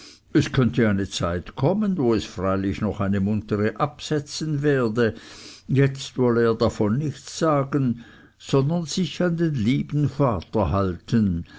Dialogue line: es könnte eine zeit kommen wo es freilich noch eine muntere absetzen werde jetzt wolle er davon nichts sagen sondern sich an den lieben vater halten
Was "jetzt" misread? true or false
false